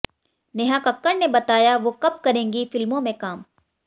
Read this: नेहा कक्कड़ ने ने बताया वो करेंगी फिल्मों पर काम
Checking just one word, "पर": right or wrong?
wrong